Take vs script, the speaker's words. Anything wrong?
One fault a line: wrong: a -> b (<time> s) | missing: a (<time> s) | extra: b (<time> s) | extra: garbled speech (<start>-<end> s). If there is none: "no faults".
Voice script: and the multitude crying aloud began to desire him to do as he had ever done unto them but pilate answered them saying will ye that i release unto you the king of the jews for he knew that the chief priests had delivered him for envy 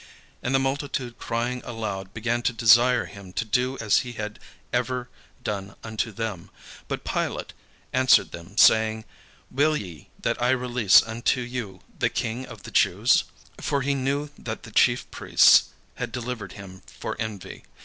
no faults